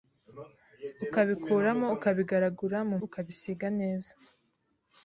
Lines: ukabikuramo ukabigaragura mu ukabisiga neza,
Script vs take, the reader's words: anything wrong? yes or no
no